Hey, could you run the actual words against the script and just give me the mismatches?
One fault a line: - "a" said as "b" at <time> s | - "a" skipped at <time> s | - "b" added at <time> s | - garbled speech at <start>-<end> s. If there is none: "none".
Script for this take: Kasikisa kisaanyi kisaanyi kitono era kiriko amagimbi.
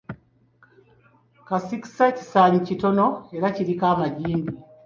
- "kisaanyi" skipped at 2.6 s